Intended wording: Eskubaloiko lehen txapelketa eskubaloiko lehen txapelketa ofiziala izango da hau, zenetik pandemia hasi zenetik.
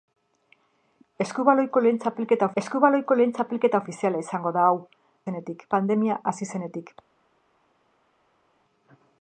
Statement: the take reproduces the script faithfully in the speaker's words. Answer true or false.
true